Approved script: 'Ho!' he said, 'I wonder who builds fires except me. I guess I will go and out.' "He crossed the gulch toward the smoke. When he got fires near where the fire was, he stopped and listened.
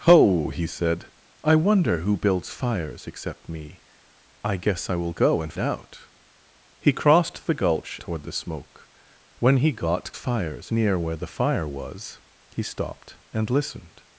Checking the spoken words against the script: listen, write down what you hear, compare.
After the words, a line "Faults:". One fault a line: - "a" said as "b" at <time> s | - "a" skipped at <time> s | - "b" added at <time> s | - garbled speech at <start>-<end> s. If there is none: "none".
'Ho!' he said, 'I wonder who builds fires except me. I guess I will go and out.' "He crossed the gulch toward the smoke. When he got fires near where the fire was, he stopped and listened.
Faults:
none